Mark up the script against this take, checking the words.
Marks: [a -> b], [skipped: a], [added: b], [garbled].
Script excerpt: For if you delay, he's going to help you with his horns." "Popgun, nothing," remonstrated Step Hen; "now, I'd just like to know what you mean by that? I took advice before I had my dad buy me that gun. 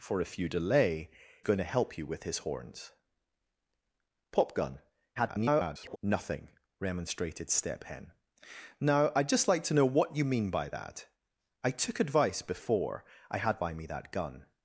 For if you delay, [skipped: he's] going to help you with his horns." "Popgun, [garbled] nothing," remonstrated Step Hen; "now, I'd just like to know what you mean by that? I took advice before I had [skipped: my dad] buy me that gun.